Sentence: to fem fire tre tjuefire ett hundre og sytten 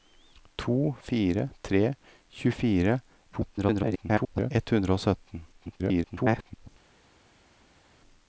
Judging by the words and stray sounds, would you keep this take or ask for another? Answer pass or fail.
fail